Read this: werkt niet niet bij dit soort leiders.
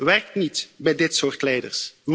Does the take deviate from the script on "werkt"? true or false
false